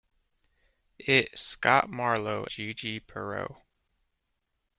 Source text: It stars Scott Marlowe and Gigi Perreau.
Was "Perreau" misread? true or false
false